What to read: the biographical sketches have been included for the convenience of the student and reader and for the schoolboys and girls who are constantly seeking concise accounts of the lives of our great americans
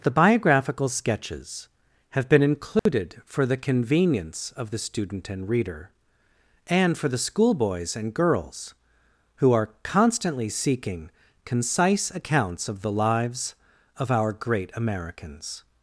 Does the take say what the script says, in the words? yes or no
yes